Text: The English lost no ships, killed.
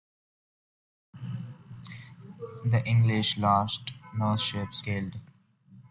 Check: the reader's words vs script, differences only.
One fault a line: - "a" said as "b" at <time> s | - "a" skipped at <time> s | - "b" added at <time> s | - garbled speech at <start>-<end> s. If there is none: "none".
none